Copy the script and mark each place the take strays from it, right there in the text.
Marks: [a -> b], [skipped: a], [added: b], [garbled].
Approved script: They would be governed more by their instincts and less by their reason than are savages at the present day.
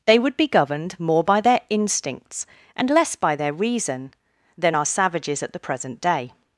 They would be governed more by their instincts and less by their reason than are savages at the present day.